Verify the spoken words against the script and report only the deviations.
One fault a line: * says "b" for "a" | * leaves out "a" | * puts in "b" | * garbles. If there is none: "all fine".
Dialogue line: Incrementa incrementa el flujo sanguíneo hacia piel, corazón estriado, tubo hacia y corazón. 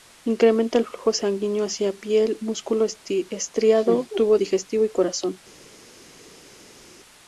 * leaves out "incrementa"
* says "músculo" for "corazón"
* says "digestivo" for "hacia"